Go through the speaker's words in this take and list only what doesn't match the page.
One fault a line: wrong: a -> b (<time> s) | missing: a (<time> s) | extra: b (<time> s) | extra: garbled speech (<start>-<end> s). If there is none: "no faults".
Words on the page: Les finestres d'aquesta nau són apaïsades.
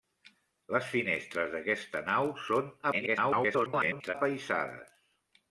extra: garbled speech (2.9-4.1 s)